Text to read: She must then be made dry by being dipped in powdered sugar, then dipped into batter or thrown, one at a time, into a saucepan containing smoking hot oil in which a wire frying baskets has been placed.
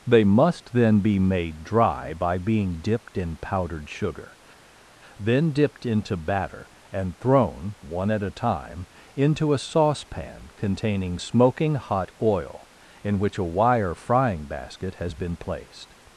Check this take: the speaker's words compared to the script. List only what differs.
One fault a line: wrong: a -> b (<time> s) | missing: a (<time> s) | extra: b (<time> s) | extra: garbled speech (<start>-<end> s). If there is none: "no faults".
wrong: She -> They (0.1 s)
wrong: or -> and (6.9 s)
wrong: baskets -> basket (14.4 s)